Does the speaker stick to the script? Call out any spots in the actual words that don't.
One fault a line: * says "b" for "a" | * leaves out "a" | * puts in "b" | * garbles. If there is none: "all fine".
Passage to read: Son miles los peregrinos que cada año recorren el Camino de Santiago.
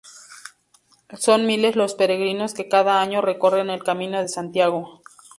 all fine